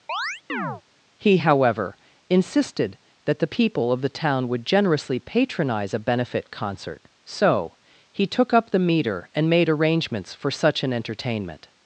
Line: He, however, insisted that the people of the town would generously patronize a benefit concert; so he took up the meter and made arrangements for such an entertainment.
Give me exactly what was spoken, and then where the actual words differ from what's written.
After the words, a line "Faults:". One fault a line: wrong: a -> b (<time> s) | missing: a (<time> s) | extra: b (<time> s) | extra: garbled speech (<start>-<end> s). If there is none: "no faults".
He, however, insisted that the people of the town would generously patronize a benefit concert; so he took up the meter and made arrangements for such an entertainment.
Faults:
no faults